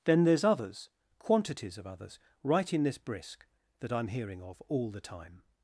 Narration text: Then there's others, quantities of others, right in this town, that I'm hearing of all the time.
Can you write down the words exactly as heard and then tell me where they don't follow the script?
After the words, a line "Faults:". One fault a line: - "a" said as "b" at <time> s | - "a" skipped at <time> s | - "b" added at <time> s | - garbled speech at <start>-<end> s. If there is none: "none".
Then there's others, quantities of others, right in this brisk, that I'm hearing of all the time.
Faults:
- "town" said as "brisk" at 3.0 s